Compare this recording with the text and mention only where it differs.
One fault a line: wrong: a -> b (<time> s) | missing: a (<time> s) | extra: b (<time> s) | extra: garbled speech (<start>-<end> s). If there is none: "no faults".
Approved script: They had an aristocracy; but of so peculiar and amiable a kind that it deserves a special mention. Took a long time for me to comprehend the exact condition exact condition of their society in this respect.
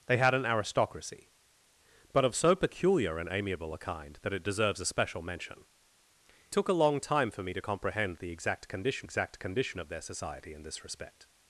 no faults